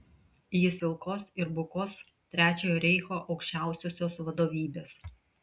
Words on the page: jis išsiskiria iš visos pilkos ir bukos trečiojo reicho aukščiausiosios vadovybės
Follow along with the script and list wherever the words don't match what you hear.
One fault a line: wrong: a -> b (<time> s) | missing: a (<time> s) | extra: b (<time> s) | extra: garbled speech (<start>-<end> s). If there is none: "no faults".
missing: išsiskiria iš visos (0.8 s)